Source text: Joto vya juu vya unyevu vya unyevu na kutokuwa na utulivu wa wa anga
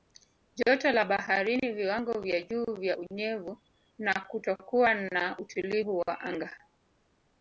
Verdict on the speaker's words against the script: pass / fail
fail